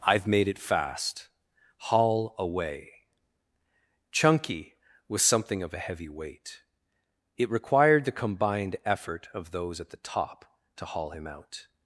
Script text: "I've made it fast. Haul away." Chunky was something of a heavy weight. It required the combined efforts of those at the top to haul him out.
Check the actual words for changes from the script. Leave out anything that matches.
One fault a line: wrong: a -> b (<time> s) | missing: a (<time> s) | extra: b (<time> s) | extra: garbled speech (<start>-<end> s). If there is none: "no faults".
wrong: efforts -> effort (8.8 s)